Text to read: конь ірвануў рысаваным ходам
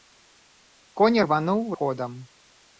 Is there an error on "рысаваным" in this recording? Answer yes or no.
yes